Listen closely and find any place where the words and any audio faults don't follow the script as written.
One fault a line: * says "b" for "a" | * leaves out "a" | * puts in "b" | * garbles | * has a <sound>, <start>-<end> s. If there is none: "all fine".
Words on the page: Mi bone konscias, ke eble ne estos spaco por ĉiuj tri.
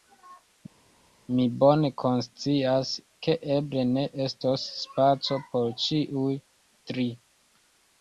all fine